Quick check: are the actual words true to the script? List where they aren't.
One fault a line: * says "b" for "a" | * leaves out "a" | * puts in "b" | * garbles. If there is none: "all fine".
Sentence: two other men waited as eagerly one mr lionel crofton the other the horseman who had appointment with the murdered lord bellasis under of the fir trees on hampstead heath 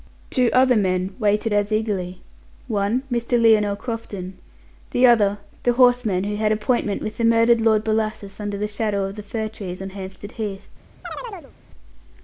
* puts in "the shadow"